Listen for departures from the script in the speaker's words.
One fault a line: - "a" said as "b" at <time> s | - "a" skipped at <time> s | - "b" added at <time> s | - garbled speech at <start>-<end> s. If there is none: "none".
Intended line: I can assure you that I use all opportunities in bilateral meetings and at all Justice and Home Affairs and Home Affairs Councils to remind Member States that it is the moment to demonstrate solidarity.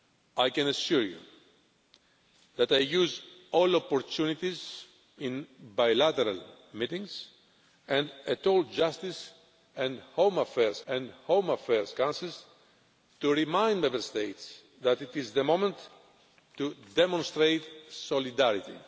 none